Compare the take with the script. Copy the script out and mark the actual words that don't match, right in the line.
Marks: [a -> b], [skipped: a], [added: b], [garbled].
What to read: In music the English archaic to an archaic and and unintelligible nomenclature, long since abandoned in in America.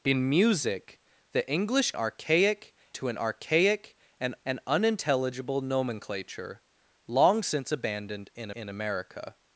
In music the English archaic to an archaic and and unintelligible nomenclature, long since abandoned in in America.